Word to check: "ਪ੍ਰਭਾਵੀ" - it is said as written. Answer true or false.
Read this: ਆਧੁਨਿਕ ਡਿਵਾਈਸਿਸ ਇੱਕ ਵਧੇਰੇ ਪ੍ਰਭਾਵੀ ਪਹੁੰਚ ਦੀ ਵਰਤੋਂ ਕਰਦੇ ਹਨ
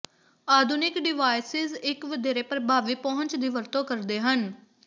true